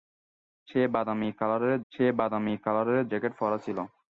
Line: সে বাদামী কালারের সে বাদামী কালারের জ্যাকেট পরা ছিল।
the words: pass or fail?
pass